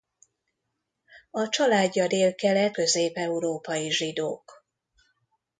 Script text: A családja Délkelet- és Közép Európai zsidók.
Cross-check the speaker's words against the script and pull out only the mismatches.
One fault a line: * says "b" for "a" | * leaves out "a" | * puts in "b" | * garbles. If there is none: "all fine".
* leaves out "és"